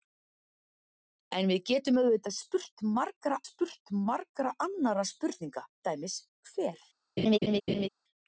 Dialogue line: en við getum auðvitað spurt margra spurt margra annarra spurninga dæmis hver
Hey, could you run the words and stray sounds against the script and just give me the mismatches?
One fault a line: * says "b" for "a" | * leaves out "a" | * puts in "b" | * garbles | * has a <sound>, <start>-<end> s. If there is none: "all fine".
* has a laugh, 7.2-7.9 s